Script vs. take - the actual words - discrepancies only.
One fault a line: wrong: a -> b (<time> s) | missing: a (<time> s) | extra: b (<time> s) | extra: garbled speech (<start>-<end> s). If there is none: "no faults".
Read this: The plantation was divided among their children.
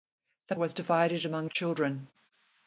missing: plantation (0.6 s)
missing: their (1.5 s)